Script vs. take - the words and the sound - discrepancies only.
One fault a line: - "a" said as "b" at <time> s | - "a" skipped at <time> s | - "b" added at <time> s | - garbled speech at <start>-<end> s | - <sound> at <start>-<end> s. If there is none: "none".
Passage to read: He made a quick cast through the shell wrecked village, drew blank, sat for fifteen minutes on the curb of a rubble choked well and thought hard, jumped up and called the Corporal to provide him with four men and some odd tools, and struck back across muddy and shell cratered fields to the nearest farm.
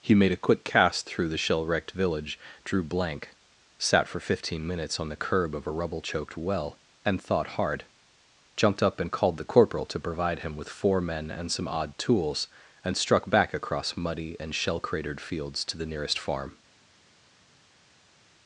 none